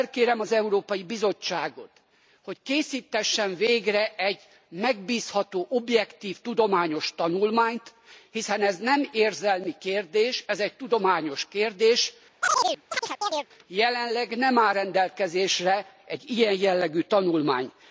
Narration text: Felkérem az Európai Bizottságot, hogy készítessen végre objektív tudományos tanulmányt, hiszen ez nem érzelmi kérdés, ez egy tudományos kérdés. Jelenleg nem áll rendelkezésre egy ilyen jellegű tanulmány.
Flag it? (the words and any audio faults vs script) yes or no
yes